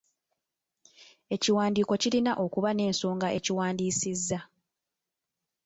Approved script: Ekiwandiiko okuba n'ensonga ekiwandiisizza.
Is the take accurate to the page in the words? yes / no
no